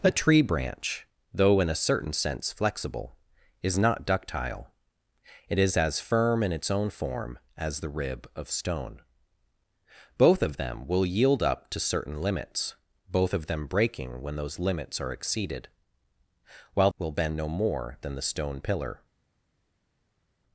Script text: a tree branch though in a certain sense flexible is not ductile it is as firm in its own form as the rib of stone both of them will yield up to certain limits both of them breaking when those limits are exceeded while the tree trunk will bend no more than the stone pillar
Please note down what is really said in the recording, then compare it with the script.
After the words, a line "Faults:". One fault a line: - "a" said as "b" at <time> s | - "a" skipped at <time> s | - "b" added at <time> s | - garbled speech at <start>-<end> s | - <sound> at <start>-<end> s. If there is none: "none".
a tree branch though in a certain sense flexible is not ductile it is as firm in its own form as the rib of stone both of them will yield up to certain limits both of them breaking when those limits are exceeded while will bend no more than the stone pillar
Faults:
- "the tree trunk" skipped at 16.9 s